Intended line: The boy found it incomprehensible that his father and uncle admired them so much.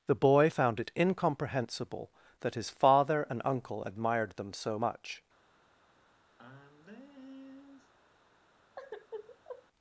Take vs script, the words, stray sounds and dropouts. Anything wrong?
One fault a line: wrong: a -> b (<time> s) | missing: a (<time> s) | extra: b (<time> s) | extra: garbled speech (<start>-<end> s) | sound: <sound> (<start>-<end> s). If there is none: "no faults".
sound: sigh (6.4-7.9 s)
sound: sigh (8.8-9.7 s)